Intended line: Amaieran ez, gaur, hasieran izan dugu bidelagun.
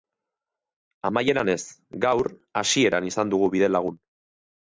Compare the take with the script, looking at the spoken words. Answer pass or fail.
pass